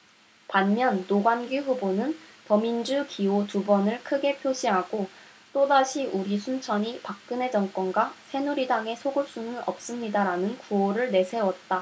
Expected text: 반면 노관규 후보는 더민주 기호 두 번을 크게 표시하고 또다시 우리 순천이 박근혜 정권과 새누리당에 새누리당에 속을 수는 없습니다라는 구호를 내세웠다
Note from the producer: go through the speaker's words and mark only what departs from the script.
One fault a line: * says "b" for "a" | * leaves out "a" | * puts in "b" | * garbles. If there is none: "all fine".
* leaves out "새누리당에"